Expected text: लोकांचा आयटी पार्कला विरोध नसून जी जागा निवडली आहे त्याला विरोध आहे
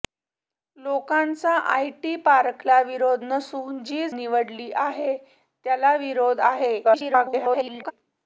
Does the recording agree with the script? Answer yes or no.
no